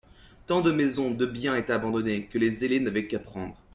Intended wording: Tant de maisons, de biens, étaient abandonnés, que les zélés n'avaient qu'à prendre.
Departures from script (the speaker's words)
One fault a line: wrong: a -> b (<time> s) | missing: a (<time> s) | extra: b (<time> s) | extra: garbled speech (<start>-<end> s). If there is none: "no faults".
no faults